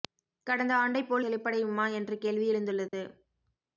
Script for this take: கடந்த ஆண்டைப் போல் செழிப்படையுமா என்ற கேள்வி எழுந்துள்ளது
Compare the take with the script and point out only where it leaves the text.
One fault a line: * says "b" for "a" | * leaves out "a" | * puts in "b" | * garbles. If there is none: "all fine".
all fine